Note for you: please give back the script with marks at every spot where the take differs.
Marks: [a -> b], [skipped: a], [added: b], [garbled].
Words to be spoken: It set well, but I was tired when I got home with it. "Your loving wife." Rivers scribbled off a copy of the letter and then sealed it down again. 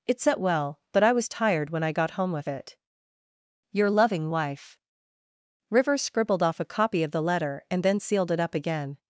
It set well, but I was tired when I got home with it. "Your loving wife." Rivers scribbled off a copy of the letter and then sealed it [down -> up] again.